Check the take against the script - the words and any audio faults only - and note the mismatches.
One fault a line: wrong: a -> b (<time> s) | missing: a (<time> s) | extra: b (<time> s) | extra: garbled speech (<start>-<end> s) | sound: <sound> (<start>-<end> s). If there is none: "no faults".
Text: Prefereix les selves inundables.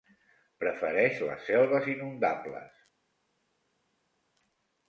no faults